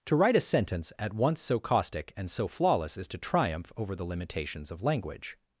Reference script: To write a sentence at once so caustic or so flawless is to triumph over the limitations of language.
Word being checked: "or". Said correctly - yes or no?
no